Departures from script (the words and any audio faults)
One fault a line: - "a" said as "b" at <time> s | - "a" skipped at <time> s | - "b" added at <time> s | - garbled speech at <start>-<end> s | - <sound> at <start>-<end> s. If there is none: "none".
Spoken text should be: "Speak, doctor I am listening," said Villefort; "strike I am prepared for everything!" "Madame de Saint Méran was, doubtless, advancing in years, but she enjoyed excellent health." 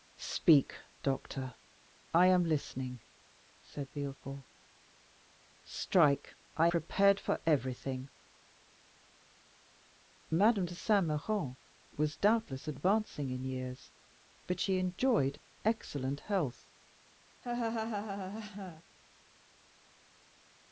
- "am" skipped at 6.7 s
- laugh at 17.4-18.8 s